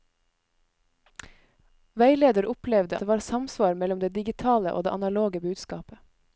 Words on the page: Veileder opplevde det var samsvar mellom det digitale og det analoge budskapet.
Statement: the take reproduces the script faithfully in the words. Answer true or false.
true